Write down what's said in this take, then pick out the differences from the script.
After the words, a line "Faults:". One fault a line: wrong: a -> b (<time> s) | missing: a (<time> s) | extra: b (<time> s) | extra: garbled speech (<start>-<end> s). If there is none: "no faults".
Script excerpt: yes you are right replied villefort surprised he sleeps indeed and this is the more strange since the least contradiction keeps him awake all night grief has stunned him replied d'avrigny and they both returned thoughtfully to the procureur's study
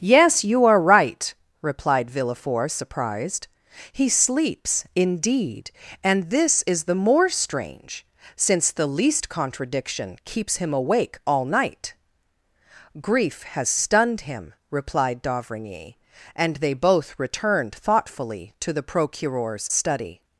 yes you are right replied villefort surprised he sleeps indeed and this is the more strange since the least contradiction keeps him awake all night grief has stunned him replied d'avrigny and they both returned thoughtfully to the procureur's study
Faults:
no faults